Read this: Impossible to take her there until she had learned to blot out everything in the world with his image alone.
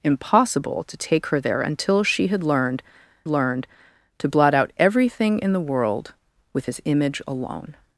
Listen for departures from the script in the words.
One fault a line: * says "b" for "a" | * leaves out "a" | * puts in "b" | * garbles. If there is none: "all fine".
* puts in "learned"